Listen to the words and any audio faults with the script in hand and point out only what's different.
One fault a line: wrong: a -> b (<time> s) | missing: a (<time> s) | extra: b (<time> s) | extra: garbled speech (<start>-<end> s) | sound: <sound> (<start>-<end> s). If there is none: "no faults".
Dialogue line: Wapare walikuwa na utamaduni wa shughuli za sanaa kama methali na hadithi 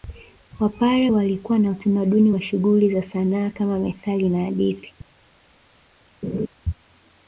sound: laugh (6.2-6.5 s)